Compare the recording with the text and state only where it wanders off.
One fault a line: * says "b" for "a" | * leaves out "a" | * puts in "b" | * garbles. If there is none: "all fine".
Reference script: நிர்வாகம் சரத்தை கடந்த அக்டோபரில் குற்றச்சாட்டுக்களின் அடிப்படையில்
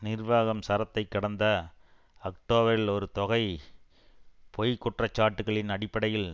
* puts in "ஒரு தொகை பொய்"